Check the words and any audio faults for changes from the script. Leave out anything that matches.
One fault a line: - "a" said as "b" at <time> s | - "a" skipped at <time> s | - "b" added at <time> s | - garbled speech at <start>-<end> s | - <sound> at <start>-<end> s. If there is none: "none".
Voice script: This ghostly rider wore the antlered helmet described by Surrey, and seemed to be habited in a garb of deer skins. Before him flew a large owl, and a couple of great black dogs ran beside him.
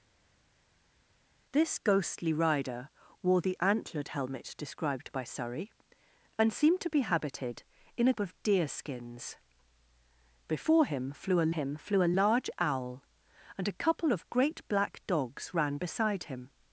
- "garb" skipped at 8.1 s
- "him flew a" added at 11.5 s